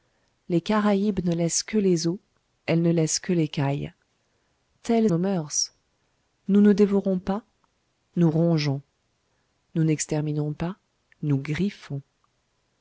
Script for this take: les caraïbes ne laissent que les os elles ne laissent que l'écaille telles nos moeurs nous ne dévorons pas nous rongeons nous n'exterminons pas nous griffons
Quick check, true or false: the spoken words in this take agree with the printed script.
true